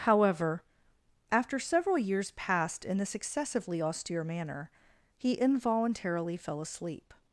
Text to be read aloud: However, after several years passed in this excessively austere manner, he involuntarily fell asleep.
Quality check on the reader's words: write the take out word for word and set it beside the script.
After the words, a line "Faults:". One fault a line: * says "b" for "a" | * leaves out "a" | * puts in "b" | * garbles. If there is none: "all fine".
However, after several years passed in this excessively austere manner, he involuntarily fell asleep.
Faults:
all fine